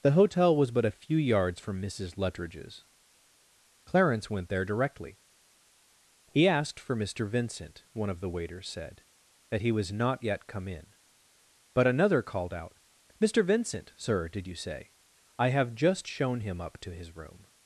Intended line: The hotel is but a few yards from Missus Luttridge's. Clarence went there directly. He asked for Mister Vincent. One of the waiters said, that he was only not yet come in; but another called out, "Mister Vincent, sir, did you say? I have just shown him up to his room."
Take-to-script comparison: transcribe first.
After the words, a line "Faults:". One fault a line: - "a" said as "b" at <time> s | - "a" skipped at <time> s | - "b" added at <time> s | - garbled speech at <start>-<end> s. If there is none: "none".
The hotel was but a few yards from Missus Luttridge's. Clarence went there directly. He asked for Mister Vincent. One of the waiters said, that he was not yet come in; but another called out, "Mister Vincent, sir, did you say? I have just shown him up to his room."
Faults:
- "is" said as "was" at 0.6 s
- "only" skipped at 9.9 s